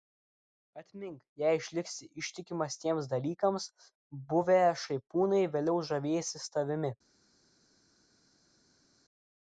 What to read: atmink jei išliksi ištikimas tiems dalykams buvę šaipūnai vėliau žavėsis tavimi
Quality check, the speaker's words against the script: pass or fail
pass